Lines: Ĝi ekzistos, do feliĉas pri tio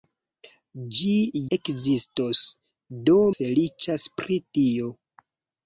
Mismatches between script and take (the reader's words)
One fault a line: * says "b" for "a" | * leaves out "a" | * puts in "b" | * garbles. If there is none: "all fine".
all fine